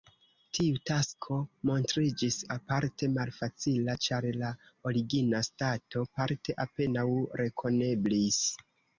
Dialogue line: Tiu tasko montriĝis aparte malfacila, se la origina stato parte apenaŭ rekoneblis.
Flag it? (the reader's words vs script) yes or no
yes